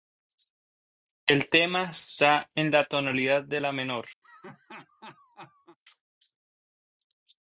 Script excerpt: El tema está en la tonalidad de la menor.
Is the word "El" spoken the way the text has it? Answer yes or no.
yes